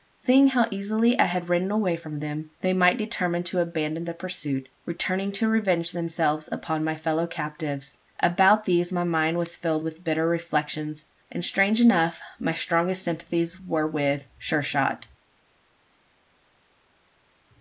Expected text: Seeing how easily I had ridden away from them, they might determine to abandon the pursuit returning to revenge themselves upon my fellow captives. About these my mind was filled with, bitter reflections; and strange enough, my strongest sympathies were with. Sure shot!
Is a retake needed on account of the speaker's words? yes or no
no